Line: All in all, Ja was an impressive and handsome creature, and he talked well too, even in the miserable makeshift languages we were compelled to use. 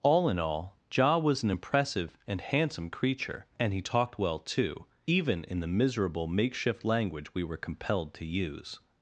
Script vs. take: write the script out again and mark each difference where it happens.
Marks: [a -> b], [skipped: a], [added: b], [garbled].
All in all, Ja was an impressive and handsome creature, and he talked well too, even in the miserable makeshift [languages -> language] we were compelled to use.